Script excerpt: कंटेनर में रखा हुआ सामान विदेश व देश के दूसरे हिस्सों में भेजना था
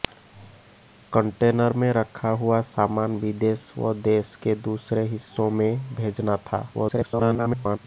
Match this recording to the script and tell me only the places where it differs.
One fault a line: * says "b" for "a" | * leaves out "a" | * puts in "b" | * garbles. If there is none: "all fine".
* garbles